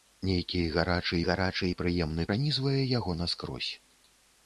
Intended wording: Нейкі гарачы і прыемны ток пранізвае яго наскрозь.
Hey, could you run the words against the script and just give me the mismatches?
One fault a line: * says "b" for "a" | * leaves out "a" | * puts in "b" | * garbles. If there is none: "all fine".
* puts in "гарачы"
* leaves out "ток"